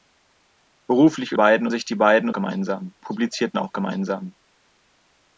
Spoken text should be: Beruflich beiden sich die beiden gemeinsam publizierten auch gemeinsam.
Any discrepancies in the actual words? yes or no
no